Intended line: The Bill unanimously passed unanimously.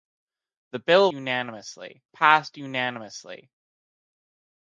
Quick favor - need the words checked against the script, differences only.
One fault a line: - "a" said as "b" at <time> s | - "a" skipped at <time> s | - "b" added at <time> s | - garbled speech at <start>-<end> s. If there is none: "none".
none